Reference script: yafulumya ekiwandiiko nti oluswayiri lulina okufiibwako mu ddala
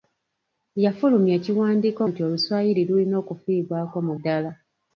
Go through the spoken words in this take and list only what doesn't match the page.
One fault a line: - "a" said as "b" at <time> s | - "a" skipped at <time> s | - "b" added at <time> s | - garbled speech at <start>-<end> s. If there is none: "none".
none